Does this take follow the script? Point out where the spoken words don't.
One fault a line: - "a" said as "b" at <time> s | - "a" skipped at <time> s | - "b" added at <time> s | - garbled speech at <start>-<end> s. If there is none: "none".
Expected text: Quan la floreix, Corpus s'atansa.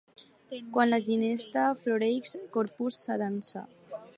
- "ginesta" added at 1.1 s